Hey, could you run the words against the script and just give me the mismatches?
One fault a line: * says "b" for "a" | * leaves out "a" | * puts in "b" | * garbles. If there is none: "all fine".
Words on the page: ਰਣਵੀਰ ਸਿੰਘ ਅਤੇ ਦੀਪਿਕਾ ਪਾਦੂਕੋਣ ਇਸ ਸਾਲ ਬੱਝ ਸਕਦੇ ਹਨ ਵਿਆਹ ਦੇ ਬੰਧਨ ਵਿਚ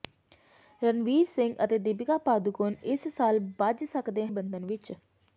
* leaves out "ਹਨ ਵਿਆਹ ਦੇ"